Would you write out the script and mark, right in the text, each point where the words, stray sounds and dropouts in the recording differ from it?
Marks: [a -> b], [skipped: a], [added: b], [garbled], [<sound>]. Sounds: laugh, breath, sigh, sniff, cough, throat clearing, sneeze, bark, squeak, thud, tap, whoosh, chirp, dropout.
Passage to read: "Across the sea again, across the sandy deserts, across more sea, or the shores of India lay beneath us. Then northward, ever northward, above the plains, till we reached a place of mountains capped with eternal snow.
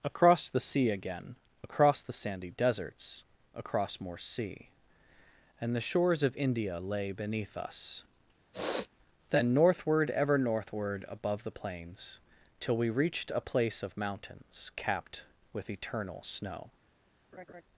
"Across the sea again, across the sandy deserts, across more sea, [or -> and] the shores of India lay beneath us. [sniff] Then northward, ever northward, above the plains, till we reached a place of mountains capped with eternal snow. [laugh]